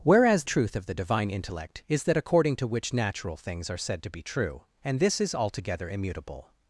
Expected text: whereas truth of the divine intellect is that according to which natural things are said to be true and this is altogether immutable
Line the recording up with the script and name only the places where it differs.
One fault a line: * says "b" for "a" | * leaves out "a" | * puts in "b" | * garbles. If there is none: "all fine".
all fine